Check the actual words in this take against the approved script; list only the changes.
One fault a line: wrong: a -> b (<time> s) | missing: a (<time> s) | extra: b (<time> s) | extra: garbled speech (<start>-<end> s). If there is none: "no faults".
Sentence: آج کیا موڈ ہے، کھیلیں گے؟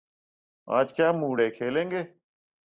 no faults